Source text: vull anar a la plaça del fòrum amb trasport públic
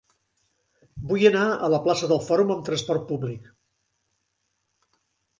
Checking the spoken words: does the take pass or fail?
pass